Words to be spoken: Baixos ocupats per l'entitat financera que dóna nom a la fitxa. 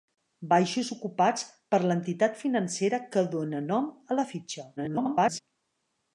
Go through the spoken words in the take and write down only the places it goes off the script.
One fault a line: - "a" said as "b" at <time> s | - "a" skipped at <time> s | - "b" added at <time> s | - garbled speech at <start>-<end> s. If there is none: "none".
- garbled speech at 4.8-5.4 s